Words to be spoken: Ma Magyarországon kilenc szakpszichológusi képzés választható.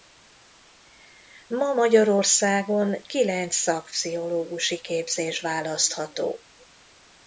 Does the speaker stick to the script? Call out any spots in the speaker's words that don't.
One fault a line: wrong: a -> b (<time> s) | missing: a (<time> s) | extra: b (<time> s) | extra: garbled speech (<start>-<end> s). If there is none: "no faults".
no faults